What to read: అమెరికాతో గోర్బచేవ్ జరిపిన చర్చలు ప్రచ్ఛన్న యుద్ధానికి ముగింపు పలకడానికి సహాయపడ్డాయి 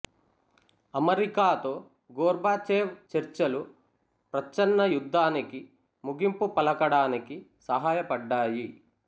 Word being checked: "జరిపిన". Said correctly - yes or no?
no